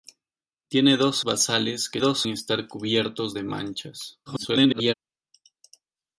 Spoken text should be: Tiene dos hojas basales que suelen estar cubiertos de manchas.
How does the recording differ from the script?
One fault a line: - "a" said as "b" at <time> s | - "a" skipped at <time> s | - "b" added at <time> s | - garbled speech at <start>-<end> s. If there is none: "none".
- "hojas" skipped at 1.2 s
- "suelen" said as "dos" at 2.0 s
- garbled speech at 4.3-4.9 s